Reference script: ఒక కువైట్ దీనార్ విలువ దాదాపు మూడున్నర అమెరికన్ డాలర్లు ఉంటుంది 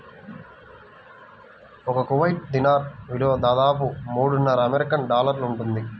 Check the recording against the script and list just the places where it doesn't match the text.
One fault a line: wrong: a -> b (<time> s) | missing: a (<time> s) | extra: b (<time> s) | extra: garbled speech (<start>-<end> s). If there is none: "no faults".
no faults